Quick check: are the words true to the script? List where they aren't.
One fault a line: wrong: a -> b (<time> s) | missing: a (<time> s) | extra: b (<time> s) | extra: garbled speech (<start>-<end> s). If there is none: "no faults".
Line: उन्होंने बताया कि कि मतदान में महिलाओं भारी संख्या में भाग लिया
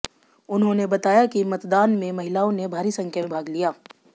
missing: कि (1.4 s)
extra: ने (2.5 s)